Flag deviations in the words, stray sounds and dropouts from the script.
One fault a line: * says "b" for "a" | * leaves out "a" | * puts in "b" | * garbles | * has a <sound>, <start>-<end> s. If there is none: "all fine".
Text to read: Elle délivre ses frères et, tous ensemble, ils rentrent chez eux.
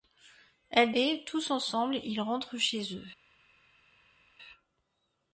* leaves out "délivre ses frères"